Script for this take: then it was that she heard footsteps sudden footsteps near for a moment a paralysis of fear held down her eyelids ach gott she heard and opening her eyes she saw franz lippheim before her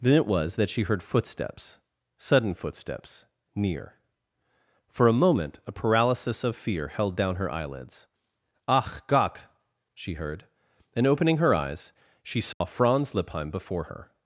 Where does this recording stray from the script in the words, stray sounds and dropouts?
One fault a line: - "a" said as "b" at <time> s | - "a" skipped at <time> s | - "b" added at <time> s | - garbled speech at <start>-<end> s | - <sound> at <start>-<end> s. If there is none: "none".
- dropout at 12.5-12.6 s